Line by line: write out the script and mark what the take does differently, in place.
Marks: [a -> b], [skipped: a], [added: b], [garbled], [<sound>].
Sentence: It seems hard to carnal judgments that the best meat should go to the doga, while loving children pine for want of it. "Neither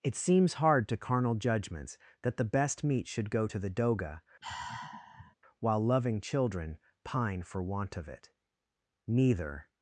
It seems hard to carnal judgments that the best meat should go to the doga, [sigh] while loving children pine for want of it. "Neither